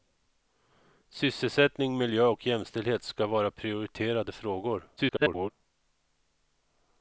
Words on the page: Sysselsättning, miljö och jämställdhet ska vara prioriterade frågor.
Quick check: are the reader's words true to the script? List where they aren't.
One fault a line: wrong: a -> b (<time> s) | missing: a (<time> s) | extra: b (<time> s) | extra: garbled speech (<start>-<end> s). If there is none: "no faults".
extra: garbled speech (5.0-5.5 s)